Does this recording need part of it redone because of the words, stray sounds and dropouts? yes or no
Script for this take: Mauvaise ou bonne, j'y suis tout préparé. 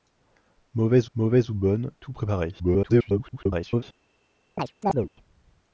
yes